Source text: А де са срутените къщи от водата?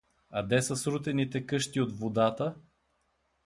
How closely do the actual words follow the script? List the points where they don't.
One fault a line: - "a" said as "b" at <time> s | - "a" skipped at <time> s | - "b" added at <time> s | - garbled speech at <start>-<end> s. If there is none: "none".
none